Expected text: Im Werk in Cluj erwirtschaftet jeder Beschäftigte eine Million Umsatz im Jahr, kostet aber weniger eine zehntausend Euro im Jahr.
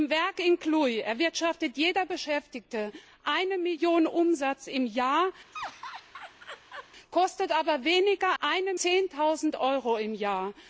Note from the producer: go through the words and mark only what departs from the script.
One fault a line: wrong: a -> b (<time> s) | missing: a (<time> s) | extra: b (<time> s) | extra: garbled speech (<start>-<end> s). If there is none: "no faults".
no faults